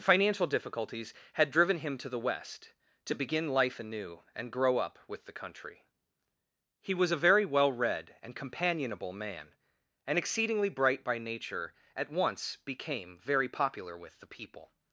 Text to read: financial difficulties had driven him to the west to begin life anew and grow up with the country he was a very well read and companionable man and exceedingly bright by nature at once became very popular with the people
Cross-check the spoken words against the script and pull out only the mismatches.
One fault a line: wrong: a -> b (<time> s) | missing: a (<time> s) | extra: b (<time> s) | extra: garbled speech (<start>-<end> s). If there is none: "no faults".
no faults